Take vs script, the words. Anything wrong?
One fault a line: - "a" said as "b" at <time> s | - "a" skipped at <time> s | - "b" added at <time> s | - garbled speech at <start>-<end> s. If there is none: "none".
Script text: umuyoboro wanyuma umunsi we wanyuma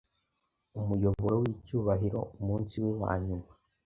- "wanyuma" said as "wicyubahiro" at 1.4 s